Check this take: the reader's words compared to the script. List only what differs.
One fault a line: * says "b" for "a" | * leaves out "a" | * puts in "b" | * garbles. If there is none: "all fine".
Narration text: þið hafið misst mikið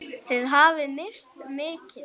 all fine